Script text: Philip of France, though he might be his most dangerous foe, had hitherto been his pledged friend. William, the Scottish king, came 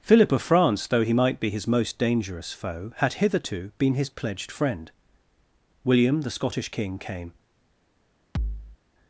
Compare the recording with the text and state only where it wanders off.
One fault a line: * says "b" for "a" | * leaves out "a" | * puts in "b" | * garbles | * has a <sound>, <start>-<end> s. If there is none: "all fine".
* has a thud, 8.3-8.8 s